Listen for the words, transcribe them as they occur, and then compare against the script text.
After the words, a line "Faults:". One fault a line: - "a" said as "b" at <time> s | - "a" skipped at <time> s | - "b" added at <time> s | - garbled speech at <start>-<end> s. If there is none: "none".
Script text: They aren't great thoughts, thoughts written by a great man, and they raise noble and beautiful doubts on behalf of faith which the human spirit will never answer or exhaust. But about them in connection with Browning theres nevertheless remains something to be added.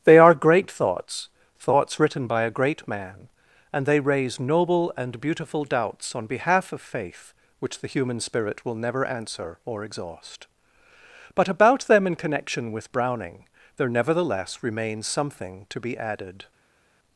They are great thoughts, thoughts written by a great man, and they raise noble and beautiful doubts on behalf of faith which the human spirit will never answer or exhaust. But about them in connection with Browning there nevertheless remains something to be added.
Faults:
- "aren't" said as "are" at 0.2 s
- "theres" said as "there" at 13.8 s